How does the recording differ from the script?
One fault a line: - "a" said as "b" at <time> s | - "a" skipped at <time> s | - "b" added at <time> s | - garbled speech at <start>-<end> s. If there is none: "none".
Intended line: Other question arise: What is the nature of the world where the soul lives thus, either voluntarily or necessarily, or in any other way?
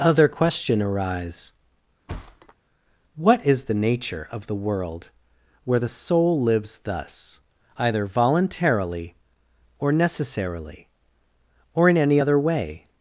none